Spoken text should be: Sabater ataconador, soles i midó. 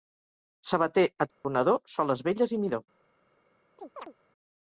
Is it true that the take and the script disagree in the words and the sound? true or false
true